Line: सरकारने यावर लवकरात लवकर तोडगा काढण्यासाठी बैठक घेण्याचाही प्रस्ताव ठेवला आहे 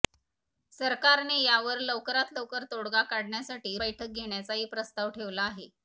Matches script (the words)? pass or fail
pass